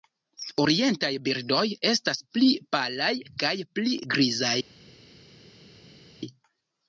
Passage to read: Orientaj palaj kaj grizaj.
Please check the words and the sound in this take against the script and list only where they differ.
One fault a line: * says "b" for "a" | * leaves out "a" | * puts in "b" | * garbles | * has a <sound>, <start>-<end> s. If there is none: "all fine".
* puts in "birdoj estas pli"
* puts in "pli"